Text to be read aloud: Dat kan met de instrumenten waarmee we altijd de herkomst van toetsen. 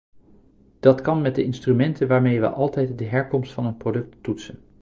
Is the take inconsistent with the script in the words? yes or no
yes